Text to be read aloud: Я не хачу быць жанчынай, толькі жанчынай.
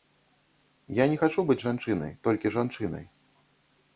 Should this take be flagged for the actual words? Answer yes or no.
no